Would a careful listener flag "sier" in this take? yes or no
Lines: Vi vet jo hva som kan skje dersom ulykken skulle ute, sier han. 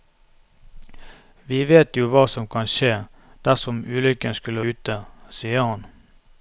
no